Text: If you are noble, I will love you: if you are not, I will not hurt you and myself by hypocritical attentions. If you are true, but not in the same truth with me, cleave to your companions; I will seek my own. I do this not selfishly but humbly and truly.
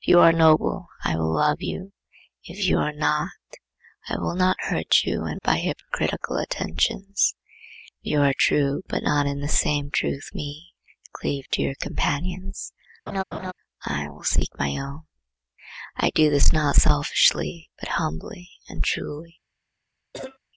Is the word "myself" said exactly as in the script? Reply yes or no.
no